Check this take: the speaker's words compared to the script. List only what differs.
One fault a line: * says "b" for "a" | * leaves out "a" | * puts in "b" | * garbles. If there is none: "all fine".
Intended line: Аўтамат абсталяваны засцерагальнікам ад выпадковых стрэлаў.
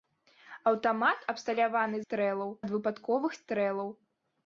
* says "стрэлаў" for "засцерагальнікам"